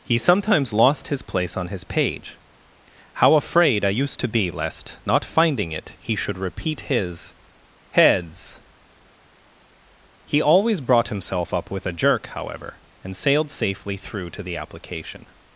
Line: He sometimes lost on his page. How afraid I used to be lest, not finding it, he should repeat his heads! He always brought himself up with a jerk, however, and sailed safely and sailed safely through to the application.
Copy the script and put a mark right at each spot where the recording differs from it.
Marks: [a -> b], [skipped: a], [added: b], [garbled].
He sometimes lost [added: his place] on his page. How afraid I used to be lest, not finding it, he should repeat his heads! He always brought himself up with a jerk, however, and sailed safely [skipped: and sailed safely] through to the application.